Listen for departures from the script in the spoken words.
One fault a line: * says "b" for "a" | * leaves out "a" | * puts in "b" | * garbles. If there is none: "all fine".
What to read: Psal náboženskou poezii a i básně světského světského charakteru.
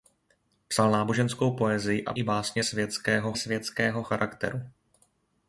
all fine